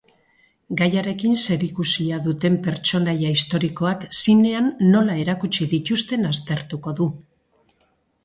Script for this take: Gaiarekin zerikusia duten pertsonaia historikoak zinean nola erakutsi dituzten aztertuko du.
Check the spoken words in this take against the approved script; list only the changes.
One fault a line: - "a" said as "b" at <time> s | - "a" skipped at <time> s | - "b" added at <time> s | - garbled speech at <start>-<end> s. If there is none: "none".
none